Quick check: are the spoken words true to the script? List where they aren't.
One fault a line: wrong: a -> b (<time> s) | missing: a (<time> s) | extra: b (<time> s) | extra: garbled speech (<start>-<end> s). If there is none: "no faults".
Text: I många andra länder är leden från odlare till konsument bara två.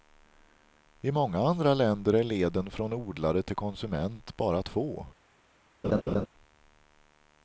no faults